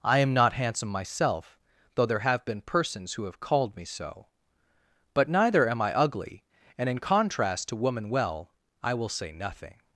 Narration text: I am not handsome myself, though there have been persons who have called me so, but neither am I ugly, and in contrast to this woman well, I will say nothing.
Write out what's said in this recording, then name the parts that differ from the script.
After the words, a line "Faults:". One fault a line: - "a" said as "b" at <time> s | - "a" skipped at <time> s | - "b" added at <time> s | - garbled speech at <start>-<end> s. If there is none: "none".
I am not handsome myself, though there have been persons who have called me so, but neither am I ugly, and in contrast to woman well, I will say nothing.
Faults:
- "this" skipped at 7.8 s